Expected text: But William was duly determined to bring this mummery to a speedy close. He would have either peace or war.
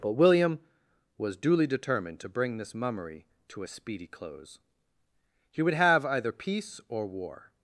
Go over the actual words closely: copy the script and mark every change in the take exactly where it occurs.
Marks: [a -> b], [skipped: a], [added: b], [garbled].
But William was duly determined to bring this mummery to a speedy close. He would have either peace or war.